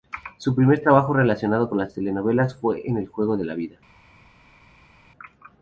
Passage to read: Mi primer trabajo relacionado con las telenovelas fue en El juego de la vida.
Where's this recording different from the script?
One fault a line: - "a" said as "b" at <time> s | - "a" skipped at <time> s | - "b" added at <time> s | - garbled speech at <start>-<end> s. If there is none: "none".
- "Mi" said as "Su" at 0.4 s